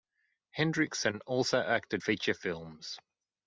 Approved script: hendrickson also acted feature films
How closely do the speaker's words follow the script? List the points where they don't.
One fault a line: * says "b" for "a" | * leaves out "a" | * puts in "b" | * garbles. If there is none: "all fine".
all fine